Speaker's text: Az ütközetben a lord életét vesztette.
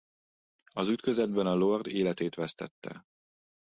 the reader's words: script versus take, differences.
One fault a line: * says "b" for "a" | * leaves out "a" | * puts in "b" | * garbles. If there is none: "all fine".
all fine